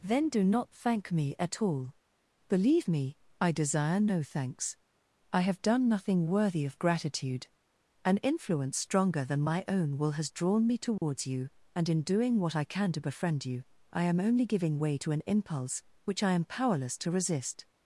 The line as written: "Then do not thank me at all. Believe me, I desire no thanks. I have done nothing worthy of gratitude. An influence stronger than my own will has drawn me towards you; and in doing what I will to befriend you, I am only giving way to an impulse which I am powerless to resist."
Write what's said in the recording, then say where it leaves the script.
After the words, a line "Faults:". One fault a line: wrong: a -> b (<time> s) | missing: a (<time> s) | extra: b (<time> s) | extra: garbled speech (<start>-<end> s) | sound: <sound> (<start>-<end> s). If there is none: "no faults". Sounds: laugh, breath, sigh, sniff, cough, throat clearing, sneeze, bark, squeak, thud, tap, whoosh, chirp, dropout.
"Then do not thank me at all. Believe me, I desire no thanks. I have done nothing worthy of gratitude. An influence stronger than my own will has drawn me towards you; and in doing what I can to befriend you, I am only giving way to an impulse which I am powerless to resist."
Faults:
sound: dropout (11.0-11.0 s)
wrong: will -> can (12.6 s)